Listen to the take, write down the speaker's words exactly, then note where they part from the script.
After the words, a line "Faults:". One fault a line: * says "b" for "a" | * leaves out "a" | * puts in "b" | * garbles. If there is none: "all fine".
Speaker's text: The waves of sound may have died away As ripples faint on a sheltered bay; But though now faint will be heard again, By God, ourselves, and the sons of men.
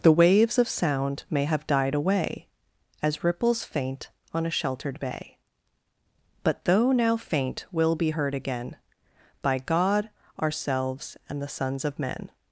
The waves of sound may have died away As ripples faint on a sheltered bay; But though now faint will be heard again, By God, ourselves, and the sons of men.
Faults:
all fine